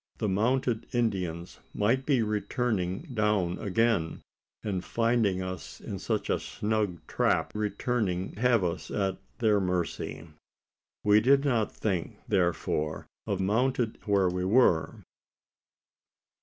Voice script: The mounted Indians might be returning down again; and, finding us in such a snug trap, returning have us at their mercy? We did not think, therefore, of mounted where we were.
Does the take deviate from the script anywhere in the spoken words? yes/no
no